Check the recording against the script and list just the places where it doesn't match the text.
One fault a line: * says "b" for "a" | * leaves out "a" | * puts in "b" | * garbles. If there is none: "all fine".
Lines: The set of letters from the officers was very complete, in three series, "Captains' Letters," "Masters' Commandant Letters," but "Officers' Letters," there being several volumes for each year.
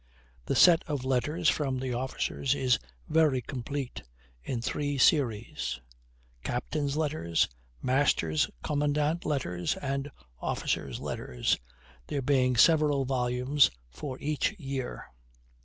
* says "is" for "was"
* says "and" for "but"